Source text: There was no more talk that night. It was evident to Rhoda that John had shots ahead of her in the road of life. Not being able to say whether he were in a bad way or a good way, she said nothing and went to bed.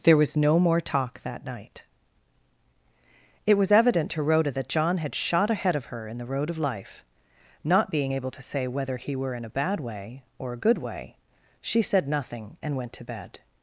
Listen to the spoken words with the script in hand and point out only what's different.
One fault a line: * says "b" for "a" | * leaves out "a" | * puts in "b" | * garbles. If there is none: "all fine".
* says "shot" for "shots"